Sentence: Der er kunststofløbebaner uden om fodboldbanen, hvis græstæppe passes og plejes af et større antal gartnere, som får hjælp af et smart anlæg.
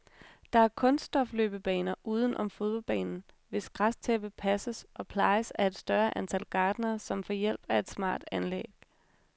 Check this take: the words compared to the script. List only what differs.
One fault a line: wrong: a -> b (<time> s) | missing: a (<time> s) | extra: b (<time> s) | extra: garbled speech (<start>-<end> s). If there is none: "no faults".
no faults